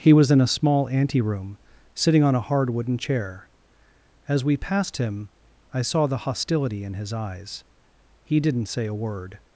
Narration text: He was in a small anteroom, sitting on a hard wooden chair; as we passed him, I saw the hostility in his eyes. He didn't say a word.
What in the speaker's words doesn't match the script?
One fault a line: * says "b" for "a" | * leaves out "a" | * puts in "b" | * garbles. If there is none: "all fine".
all fine